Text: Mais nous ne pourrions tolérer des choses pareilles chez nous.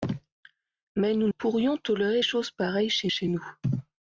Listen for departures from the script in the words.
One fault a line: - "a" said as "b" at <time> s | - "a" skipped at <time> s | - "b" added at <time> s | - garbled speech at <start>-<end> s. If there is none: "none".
- "ne" skipped at 1.3 s
- "des" skipped at 2.2 s
- "chez" added at 3.1 s